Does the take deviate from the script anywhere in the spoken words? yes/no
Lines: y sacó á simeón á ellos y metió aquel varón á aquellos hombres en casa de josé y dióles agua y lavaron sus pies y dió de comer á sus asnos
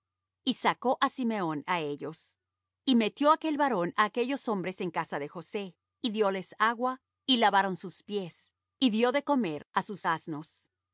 no